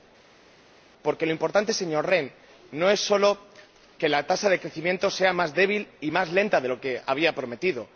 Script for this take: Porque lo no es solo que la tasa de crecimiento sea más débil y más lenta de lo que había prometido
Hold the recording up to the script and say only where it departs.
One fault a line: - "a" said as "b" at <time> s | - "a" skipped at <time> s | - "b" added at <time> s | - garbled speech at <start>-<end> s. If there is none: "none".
- "importante señor Rehn" added at 1.3 s